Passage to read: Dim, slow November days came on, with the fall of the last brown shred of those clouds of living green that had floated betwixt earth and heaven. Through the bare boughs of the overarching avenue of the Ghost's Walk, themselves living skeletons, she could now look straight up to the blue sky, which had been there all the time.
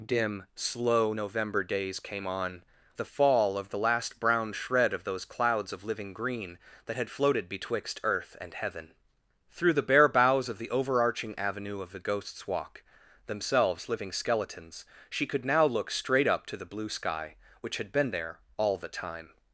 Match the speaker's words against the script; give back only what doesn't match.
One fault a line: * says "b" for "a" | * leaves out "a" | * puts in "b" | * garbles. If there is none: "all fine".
* leaves out "with"